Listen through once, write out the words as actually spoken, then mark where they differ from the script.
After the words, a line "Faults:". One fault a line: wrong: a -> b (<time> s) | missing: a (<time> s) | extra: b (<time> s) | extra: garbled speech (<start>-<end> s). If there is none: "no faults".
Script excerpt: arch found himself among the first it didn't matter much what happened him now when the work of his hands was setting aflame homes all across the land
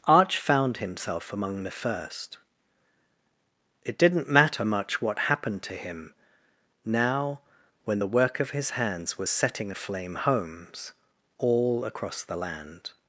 arch found himself among the first it didn't matter much what happened to him now when the work of his hands was setting aflame homes all across the land
Faults:
extra: to (5.6 s)